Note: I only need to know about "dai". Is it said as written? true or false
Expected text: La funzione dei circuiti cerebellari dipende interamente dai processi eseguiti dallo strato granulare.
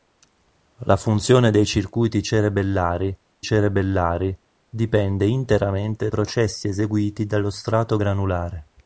false